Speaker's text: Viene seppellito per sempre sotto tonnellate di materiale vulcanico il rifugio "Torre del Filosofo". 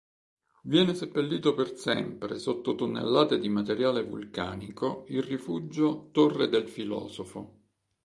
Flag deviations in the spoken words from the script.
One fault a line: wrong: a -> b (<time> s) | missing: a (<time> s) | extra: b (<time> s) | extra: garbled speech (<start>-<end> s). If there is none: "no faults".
no faults